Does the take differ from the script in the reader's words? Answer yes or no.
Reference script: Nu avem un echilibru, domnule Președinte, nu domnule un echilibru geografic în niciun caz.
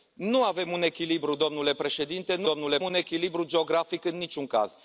no